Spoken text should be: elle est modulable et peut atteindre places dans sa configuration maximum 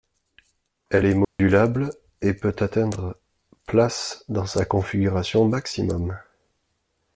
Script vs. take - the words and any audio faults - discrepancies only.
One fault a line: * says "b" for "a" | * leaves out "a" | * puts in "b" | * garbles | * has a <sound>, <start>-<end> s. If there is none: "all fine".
* has a dropout, 1.2-1.4 s